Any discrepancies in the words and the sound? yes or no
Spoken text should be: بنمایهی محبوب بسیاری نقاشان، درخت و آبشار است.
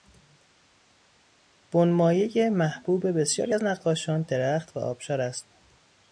yes